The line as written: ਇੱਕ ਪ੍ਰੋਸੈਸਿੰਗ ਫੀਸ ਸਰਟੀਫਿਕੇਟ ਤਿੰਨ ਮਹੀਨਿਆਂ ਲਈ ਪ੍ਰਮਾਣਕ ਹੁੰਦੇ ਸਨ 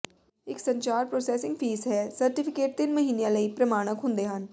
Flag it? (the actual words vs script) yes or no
yes